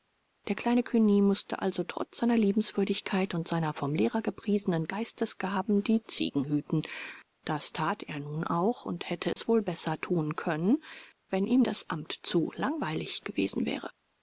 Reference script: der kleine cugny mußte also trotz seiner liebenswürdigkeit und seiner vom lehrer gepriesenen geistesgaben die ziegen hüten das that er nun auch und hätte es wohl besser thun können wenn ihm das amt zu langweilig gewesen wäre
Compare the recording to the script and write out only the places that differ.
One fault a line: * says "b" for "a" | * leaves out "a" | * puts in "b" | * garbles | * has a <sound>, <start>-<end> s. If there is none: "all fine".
* has a dropout, 9.3-9.4 s